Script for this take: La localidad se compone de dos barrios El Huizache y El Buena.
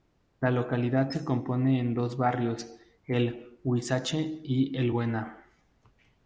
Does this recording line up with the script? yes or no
yes